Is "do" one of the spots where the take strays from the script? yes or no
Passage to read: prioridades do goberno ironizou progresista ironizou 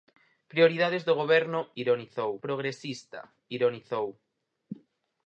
no